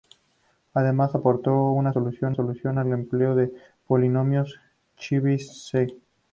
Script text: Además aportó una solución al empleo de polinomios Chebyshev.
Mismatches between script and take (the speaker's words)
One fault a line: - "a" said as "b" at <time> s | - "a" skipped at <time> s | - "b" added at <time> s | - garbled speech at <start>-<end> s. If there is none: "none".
- "solución" added at 2.3 s